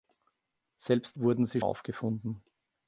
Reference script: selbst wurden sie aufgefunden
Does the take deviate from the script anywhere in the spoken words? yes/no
no